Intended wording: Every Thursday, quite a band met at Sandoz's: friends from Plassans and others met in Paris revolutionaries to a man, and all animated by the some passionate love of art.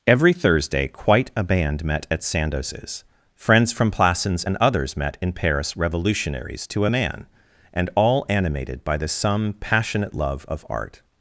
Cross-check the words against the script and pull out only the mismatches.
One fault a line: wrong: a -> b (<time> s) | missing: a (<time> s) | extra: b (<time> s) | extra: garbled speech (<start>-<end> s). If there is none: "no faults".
no faults